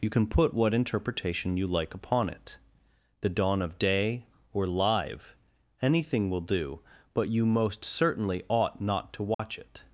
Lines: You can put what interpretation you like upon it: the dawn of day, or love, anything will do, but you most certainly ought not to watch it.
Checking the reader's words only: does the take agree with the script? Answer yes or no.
no